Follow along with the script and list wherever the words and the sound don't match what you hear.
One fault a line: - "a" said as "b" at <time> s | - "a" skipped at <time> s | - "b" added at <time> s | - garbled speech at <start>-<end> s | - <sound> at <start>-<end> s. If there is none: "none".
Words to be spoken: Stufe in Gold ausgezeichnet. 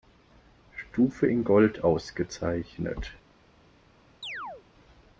- chirp at 4.2-4.6 s